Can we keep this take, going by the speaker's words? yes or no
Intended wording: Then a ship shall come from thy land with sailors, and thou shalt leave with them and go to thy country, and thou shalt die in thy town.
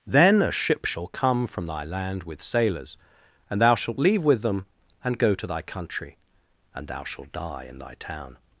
yes